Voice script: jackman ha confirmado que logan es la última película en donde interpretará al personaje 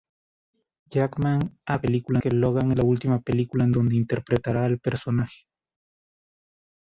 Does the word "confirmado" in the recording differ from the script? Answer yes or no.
yes